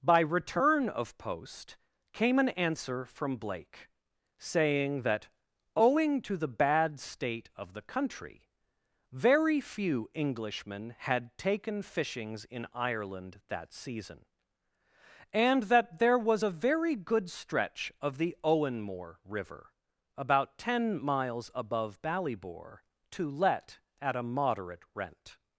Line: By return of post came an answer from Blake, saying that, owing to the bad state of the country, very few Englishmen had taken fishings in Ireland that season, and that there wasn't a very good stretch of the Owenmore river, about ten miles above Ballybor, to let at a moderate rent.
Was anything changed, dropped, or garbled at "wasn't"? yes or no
yes